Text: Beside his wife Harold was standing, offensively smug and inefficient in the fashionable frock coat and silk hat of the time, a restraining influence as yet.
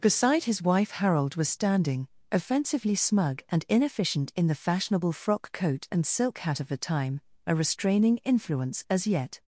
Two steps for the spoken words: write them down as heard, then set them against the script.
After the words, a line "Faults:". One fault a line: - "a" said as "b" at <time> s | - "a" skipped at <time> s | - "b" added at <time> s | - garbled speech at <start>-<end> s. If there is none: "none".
Beside his wife Harold was standing, offensively smug and inefficient in the fashionable frock coat and silk hat of the time, a restraining influence as yet.
Faults:
none